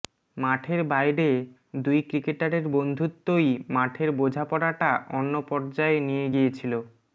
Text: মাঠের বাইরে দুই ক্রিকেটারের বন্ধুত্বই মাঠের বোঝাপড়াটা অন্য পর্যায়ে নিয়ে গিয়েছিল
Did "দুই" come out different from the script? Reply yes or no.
no